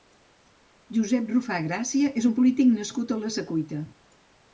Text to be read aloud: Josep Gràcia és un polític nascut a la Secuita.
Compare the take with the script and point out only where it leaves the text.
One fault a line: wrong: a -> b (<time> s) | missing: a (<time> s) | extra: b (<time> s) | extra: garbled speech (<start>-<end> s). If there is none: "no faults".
extra: Rufà (1.3 s)